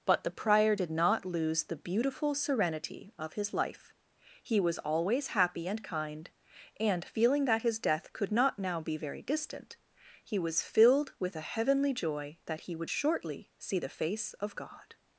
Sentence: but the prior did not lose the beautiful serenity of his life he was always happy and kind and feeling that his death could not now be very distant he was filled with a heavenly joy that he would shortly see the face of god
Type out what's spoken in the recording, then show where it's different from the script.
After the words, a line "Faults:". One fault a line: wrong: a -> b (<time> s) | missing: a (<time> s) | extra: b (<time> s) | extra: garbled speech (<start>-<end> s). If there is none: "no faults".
but the prior did not lose the beautiful serenity of his life he was always happy and kind and feeling that his death could not now be very distant he was filled with a heavenly joy that he would shortly see the face of god
Faults:
no faults